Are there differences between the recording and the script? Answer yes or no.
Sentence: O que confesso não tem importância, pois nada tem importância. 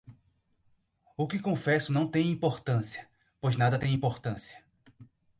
no